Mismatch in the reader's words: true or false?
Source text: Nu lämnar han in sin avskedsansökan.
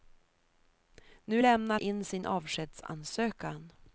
true